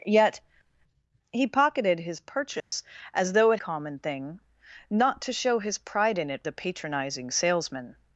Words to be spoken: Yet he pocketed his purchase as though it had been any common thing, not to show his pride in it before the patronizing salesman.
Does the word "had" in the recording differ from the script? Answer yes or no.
yes